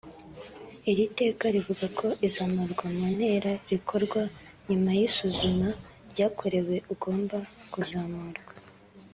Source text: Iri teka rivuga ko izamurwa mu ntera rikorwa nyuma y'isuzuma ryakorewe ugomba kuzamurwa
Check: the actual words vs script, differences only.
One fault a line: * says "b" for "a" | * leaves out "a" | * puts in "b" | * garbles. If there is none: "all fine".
all fine